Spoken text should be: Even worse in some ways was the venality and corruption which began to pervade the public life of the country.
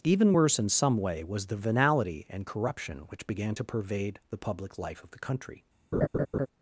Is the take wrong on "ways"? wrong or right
wrong